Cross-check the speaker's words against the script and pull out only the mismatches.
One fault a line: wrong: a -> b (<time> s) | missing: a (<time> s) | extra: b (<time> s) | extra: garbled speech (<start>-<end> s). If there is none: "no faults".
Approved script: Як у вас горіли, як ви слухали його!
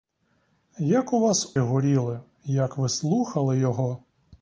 no faults